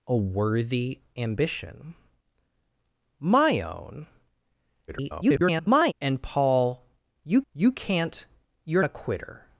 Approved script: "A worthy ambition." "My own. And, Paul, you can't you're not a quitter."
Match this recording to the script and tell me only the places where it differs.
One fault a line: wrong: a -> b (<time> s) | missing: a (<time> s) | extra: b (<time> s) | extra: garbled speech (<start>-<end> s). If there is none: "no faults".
extra: garbled speech (4.9-5.9 s)
extra: you (7.5 s)
missing: not (8.8 s)